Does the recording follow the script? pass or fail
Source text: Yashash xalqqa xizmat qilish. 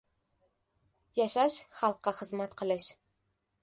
pass